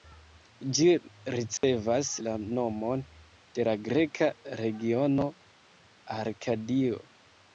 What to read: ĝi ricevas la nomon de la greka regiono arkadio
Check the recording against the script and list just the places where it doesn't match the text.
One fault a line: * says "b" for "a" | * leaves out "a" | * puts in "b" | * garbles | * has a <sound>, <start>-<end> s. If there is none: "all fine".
* has a dropout, 1.6-1.6 s